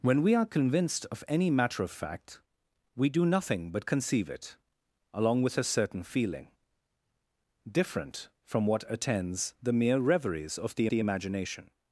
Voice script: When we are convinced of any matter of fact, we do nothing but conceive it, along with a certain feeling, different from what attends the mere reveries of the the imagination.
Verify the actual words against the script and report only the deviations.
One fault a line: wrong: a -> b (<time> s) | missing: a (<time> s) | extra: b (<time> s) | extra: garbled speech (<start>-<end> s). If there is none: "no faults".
no faults